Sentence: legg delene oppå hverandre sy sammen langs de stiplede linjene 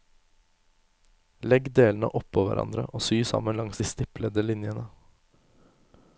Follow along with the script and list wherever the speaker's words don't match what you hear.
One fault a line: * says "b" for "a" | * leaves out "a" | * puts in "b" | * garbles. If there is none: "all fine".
* puts in "og"